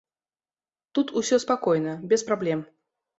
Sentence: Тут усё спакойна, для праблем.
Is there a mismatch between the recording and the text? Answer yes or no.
yes